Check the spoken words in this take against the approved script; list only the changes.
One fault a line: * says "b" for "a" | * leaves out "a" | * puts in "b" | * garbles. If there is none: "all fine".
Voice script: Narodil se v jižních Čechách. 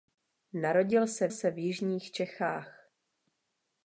* puts in "se"